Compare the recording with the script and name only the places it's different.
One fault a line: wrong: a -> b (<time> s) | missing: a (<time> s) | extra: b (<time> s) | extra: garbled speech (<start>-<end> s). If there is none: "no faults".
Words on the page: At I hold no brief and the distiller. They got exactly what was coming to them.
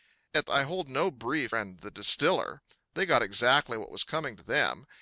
no faults